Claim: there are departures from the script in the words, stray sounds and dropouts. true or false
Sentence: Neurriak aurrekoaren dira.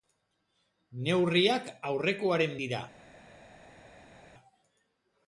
false